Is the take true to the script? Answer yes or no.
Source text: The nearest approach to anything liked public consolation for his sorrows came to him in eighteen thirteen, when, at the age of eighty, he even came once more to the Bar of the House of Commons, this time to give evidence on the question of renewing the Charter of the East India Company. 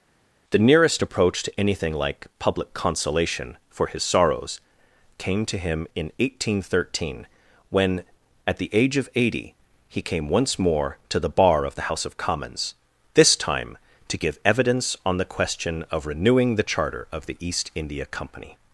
no